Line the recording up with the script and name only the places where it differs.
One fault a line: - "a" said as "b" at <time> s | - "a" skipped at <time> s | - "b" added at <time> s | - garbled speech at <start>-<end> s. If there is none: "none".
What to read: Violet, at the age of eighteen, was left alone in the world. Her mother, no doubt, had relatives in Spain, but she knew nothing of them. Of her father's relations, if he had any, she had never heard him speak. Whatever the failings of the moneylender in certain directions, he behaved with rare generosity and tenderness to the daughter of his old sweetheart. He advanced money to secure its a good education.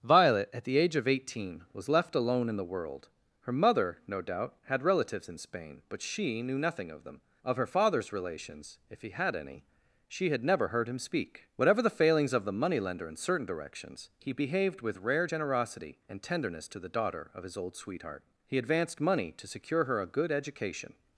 - "its" said as "her" at 19.8 s